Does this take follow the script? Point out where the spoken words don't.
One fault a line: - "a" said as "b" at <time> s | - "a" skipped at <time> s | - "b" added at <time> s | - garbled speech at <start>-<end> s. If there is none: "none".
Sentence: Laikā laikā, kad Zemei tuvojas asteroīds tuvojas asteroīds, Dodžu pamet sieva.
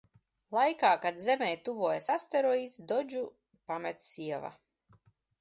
- "laikā" skipped at 0.9 s
- "tuvojas asteroīds" skipped at 2.8 s